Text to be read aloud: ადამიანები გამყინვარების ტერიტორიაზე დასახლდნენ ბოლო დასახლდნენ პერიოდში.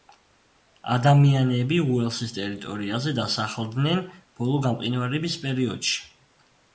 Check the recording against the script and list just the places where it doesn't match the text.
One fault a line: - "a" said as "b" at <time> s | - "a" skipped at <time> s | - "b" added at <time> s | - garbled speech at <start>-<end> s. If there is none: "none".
- "გამყინვარების" said as "უელსის" at 2.0 s
- "დასახლდნენ" said as "გამყინვარების" at 4.7 s